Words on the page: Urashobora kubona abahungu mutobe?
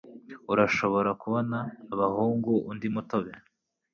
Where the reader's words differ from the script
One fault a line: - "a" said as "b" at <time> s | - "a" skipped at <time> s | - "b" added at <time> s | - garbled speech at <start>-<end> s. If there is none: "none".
- "undi" added at 2.7 s